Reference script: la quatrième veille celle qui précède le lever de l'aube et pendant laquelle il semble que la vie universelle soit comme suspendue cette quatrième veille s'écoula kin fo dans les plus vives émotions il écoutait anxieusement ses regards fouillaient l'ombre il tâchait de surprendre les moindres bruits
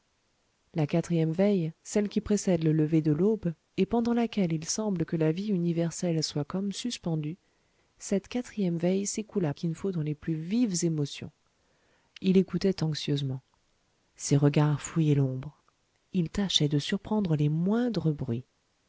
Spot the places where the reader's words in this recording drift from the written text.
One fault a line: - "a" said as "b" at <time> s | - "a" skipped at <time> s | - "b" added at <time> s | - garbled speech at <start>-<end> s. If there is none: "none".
none